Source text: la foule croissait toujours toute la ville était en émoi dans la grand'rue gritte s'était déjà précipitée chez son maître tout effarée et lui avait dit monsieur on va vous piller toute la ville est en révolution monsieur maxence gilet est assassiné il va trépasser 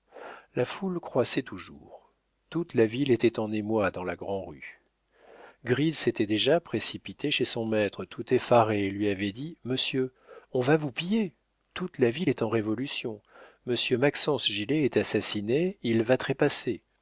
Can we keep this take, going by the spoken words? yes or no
yes